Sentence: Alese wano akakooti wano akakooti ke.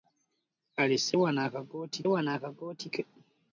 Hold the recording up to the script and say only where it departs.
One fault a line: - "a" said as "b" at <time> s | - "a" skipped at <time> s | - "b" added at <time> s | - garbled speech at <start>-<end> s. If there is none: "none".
none